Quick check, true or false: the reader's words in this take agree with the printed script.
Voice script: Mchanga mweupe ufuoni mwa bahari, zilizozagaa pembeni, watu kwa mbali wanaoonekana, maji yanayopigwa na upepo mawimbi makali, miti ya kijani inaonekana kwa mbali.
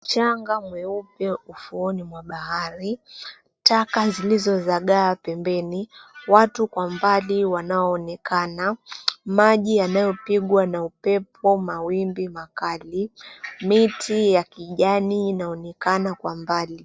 false